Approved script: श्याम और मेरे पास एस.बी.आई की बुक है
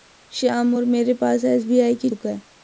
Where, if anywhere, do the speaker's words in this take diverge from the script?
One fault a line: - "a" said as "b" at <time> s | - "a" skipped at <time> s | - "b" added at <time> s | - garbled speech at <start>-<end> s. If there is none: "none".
none